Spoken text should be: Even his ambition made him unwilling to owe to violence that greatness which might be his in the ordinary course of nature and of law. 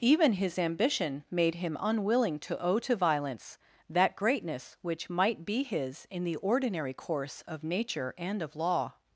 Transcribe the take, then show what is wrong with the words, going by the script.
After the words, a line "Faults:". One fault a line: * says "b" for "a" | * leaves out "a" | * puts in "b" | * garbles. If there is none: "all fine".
Even his ambition made him unwilling to owe to violence that greatness which might be his in the ordinary course of nature and of law.
Faults:
all fine